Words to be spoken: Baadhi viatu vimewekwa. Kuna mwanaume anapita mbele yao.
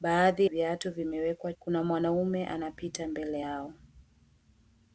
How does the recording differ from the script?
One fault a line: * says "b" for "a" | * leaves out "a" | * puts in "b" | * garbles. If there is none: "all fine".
all fine